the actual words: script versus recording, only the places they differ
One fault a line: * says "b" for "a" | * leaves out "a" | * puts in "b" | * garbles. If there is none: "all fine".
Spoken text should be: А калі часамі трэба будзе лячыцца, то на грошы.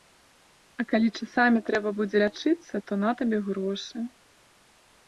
* puts in "табе"